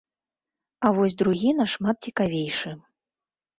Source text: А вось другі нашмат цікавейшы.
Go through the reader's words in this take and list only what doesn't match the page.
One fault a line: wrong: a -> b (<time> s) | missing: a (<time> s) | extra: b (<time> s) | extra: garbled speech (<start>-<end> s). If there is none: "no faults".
no faults